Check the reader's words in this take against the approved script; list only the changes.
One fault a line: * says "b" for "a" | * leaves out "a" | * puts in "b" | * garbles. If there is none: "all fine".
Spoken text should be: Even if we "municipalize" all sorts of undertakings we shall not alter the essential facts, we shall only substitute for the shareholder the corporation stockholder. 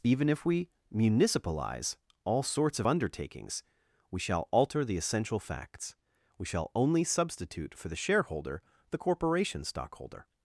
* leaves out "not"